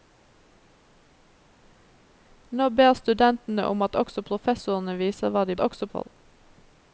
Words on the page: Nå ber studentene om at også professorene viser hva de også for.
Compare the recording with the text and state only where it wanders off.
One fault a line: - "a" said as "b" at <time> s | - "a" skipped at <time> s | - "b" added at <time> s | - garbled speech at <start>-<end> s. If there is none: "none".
none